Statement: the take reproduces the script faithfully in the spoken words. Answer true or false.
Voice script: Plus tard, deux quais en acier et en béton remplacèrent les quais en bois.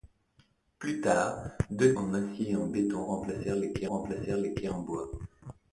false